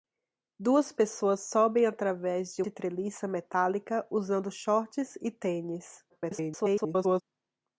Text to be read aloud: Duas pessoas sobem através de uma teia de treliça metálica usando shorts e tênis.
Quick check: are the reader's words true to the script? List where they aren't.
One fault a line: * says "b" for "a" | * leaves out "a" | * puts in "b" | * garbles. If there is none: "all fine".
* leaves out "uma teia"
* garbles